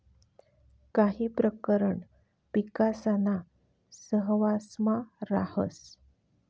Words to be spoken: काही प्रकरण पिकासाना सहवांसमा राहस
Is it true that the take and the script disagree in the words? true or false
false